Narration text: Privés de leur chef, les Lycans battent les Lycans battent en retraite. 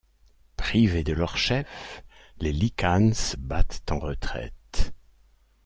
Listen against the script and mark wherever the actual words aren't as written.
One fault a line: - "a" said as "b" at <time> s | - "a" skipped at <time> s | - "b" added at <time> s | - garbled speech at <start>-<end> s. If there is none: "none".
- "les Lycans battent" skipped at 3.9 s